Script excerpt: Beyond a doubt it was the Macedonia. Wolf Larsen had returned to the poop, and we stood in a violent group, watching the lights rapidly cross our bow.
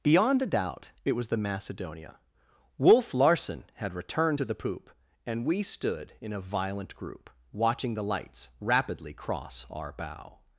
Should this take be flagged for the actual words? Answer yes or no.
no